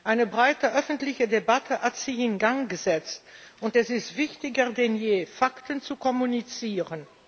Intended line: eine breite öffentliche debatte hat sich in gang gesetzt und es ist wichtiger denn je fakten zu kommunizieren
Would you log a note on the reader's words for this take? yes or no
no